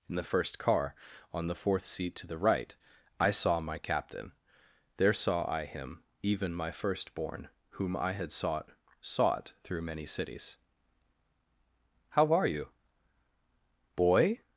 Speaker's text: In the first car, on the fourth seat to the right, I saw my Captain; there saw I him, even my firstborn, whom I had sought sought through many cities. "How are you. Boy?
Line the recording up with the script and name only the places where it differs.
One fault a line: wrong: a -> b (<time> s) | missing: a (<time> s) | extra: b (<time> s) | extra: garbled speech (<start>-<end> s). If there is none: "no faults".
no faults